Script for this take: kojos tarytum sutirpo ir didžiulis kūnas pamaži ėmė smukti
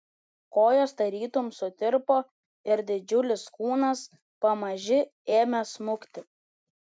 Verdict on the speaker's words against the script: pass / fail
pass